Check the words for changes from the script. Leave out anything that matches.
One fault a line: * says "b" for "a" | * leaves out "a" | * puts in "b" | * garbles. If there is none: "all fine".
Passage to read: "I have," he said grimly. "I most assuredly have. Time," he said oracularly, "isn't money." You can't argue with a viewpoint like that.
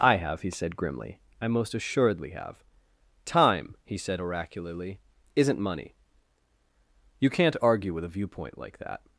all fine